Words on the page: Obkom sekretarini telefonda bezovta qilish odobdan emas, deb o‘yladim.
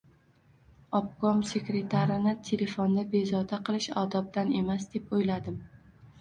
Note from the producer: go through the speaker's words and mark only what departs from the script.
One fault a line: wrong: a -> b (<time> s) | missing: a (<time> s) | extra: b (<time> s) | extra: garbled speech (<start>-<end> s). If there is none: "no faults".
no faults